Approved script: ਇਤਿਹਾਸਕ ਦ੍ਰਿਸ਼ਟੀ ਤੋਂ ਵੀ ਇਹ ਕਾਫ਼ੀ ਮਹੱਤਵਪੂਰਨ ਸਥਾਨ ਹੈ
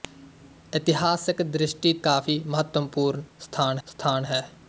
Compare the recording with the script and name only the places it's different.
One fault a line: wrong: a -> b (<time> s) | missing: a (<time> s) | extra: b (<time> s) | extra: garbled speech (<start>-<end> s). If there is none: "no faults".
missing: ਤੋਂ ਵੀ ਇਹ (1.9 s)
extra: ਸਥਾਨ (3.9 s)